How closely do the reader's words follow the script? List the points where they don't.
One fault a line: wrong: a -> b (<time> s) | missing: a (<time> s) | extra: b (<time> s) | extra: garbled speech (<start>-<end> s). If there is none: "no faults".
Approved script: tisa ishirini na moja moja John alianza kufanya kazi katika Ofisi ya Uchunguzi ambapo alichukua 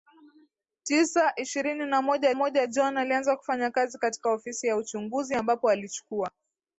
no faults